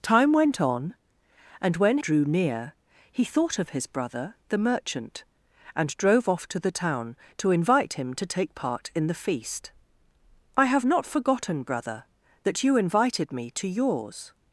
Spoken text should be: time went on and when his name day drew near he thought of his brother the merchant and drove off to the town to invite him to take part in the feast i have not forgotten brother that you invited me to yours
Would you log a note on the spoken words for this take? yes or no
yes